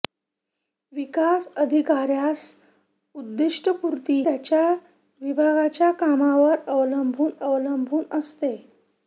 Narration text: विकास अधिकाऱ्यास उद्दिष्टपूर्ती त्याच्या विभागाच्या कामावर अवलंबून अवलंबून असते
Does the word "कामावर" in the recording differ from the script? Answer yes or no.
no